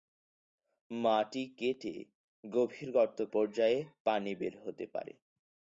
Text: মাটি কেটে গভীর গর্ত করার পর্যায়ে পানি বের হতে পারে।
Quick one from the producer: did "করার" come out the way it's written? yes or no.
no